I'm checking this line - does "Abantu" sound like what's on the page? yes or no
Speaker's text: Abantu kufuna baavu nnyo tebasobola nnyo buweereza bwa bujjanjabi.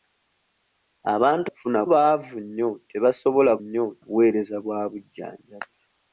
yes